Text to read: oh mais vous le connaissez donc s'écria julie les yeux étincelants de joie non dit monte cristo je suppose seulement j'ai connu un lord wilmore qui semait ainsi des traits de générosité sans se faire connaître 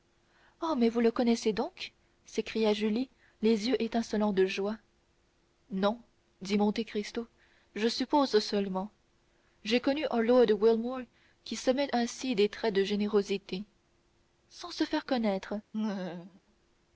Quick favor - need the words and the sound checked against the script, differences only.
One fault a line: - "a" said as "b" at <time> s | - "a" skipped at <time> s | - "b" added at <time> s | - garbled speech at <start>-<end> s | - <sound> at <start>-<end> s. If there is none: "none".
- laugh at 15.7-16.4 s